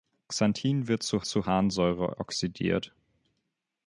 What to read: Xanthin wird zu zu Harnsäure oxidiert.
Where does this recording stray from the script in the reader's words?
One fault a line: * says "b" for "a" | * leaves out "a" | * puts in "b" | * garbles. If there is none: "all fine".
all fine